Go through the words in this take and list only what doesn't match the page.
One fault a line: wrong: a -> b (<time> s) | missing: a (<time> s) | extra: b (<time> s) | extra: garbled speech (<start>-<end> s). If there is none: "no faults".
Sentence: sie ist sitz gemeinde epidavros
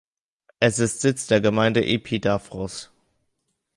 wrong: sie -> es (0.6 s)
extra: der (1.3 s)